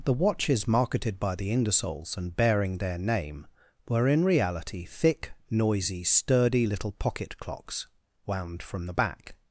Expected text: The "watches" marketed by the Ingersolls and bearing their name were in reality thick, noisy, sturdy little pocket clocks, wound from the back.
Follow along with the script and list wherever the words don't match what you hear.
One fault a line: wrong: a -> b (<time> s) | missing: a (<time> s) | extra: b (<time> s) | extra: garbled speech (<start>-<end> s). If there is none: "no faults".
no faults